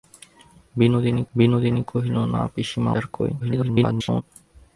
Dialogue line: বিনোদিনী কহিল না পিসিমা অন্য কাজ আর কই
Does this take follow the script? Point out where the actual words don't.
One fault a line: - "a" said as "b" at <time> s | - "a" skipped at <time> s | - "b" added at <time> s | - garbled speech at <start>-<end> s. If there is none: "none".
- "বিনোদিনী" added at 1.3 s
- "অন্য কাজ" skipped at 2.9 s
- garbled speech at 3.4-4.2 s